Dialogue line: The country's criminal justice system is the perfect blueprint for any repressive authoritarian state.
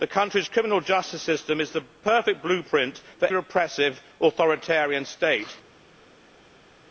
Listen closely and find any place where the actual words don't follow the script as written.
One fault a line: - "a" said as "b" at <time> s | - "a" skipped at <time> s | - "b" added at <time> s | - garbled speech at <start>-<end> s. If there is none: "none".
- "any" skipped at 3.3 s